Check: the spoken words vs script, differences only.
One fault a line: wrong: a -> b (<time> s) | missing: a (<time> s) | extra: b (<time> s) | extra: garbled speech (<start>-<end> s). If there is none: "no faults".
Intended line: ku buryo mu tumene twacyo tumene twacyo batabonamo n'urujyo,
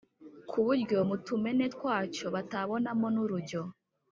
missing: tumene twacyo (2.3 s)